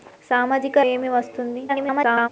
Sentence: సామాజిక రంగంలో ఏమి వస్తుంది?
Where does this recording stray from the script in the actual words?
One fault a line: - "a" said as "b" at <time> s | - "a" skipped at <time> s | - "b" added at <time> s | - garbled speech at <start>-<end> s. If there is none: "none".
- "రంగంలో" skipped at 0.8 s
- garbled speech at 1.7-2.3 s